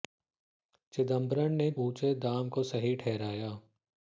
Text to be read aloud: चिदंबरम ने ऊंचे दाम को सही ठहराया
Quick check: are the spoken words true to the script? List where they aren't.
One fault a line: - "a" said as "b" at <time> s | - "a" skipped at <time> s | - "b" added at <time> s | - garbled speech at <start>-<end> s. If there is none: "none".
none